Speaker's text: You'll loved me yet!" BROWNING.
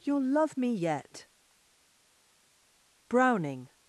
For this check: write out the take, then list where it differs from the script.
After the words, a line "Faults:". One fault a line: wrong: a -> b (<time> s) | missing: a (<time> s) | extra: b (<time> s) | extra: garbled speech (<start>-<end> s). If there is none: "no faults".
You'll love me yet!" BROWNING.
Faults:
wrong: loved -> love (0.2 s)